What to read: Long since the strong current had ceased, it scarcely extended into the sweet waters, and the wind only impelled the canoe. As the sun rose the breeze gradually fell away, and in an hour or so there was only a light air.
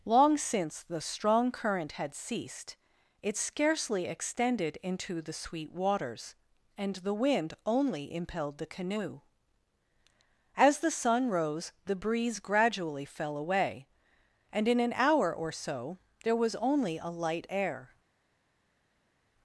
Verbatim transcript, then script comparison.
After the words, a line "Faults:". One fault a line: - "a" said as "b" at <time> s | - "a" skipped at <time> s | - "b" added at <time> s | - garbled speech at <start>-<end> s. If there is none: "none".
Long since the strong current had ceased, it scarcely extended into the sweet waters, and the wind only impelled the canoe. As the sun rose the breeze gradually fell away, and in an hour or so there was only a light air.
Faults:
none